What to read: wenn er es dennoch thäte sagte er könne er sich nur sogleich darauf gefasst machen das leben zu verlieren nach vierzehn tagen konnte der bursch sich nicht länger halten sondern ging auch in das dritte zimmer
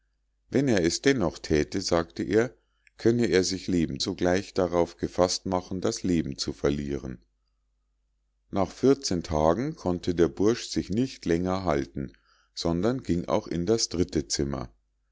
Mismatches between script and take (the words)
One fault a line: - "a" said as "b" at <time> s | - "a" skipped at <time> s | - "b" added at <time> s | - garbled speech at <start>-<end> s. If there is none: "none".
- "nur" said as "leben" at 3.7 s